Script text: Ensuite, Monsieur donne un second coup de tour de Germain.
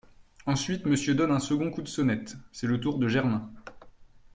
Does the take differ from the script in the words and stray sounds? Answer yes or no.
yes